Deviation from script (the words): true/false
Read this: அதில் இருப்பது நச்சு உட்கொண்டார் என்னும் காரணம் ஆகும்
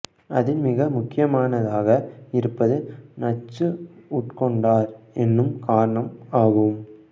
true